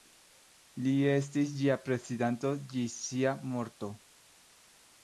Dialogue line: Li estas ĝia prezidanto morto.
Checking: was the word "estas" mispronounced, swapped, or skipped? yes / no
yes